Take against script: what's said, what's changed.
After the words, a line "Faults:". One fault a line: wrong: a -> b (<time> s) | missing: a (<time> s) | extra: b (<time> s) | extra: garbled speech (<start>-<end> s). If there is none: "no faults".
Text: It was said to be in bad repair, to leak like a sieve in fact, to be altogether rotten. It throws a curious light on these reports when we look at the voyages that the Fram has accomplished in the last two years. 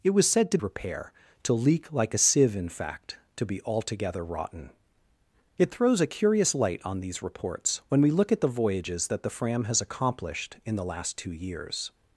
It was said to repair, to leak like a sieve in fact, to be altogether rotten. It throws a curious light on these reports when we look at the voyages that the Fram has accomplished in the last two years.
Faults:
missing: be in bad (0.6 s)